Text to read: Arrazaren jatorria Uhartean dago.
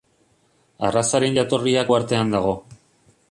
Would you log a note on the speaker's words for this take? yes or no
no